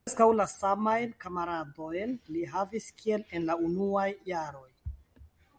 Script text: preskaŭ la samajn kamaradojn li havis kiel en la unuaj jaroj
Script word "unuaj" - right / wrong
right